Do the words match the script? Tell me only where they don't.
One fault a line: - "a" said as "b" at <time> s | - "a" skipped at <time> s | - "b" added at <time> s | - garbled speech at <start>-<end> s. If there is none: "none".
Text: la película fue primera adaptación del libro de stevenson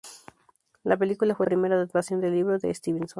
none